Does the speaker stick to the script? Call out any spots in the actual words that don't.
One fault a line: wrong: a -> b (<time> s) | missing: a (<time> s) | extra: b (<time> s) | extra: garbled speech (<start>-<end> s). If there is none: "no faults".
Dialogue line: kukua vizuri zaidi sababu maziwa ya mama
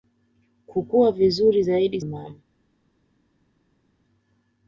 missing: sababu maziwa ya (2.0 s)